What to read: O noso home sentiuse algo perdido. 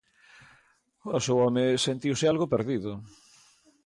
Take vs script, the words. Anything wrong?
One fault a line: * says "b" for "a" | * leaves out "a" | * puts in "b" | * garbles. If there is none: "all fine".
all fine